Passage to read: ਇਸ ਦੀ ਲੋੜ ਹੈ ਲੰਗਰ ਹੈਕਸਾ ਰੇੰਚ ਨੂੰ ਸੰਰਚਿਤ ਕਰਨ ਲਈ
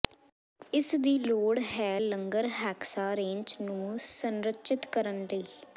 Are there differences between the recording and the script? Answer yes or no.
no